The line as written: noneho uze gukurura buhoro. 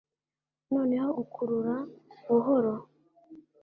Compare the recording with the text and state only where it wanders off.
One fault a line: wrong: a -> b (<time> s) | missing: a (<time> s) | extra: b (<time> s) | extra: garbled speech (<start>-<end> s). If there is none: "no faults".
missing: uze (1.1 s)